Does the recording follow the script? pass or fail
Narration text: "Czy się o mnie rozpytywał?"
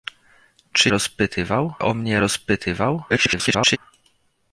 fail